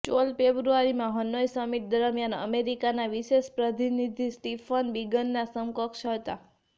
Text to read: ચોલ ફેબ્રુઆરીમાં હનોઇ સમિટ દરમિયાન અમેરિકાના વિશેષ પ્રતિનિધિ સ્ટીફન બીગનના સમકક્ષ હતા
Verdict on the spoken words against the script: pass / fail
pass